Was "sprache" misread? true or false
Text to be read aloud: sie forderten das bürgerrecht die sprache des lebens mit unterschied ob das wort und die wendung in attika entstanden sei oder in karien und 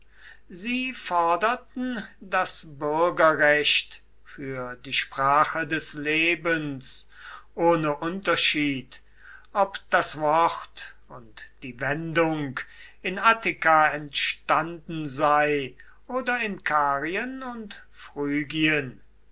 false